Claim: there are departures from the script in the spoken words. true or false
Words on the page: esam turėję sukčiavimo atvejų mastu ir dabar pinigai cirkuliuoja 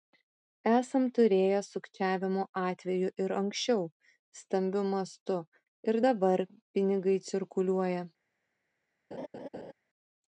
true